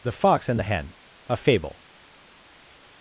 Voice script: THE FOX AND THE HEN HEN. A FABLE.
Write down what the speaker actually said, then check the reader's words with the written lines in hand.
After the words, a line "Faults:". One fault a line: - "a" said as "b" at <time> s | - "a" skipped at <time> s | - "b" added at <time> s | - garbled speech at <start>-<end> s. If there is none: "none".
THE FOX AND THE HEN. A FABLE.
Faults:
- "HEN" skipped at 0.9 s